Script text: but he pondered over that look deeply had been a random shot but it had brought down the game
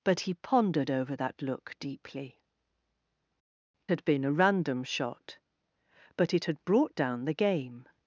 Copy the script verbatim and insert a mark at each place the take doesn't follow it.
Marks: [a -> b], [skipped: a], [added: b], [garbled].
but he pondered over that look deeply had been a random shot but it had brought down the game